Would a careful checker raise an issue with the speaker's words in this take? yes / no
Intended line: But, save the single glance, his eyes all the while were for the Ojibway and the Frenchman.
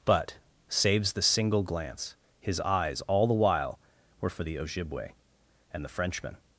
yes